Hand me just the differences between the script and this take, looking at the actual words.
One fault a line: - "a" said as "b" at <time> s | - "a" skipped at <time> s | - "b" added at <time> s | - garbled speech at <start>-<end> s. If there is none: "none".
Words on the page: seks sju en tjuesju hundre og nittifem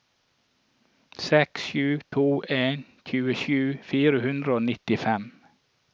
- "to" added at 2.1 s
- "fire" added at 3.9 s